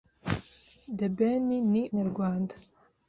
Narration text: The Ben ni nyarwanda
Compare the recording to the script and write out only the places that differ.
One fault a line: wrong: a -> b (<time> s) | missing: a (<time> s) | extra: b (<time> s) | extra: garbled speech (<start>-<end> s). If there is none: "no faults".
no faults